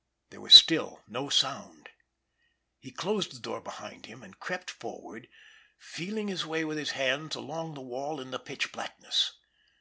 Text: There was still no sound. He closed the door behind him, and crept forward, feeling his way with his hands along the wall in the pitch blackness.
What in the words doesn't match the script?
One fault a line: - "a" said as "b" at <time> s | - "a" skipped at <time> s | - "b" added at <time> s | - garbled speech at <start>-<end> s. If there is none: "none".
none